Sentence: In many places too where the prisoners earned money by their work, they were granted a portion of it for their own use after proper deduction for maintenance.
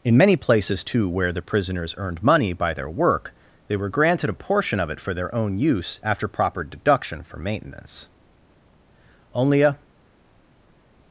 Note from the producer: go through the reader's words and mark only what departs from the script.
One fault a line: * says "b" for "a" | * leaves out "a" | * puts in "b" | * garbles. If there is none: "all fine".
* puts in "Only a"